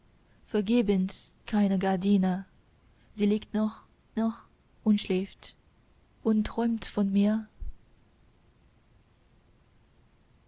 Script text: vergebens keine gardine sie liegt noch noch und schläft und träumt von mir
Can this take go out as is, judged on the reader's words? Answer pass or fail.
pass